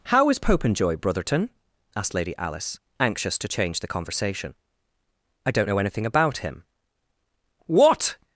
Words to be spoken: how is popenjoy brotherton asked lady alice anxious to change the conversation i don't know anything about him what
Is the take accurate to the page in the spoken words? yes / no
yes